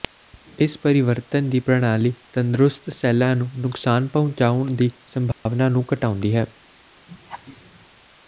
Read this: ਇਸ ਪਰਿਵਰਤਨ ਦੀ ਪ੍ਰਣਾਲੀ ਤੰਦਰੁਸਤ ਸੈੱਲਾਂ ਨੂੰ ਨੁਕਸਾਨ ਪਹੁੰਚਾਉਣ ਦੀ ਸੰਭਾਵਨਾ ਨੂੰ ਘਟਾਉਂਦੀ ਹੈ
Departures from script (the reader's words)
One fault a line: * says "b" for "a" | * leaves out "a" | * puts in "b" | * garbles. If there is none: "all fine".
all fine